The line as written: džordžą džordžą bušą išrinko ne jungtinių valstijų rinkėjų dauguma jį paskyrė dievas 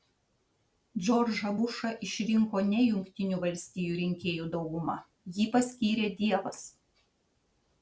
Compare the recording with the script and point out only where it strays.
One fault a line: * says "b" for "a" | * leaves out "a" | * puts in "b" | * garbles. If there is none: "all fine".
* leaves out "džordžą"